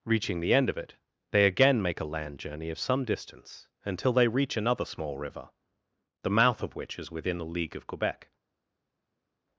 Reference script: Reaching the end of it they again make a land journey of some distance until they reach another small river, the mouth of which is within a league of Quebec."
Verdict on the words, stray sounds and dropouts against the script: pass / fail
fail